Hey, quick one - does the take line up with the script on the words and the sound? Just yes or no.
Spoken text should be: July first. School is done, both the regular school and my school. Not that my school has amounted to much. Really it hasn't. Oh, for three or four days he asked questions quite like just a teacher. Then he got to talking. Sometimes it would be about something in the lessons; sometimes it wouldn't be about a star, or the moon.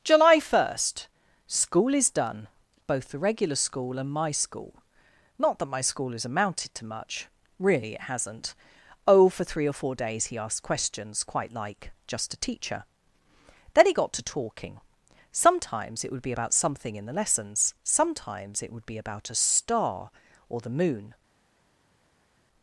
no